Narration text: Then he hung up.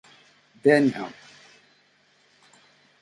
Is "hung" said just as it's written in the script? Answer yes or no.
no